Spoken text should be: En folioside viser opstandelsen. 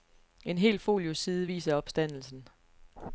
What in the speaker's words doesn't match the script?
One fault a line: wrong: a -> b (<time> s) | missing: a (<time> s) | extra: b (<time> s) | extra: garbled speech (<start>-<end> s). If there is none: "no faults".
extra: hel (0.6 s)